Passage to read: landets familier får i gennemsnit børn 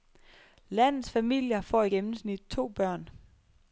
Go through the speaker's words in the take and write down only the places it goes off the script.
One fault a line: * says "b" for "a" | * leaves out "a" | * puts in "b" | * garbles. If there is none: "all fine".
* puts in "to"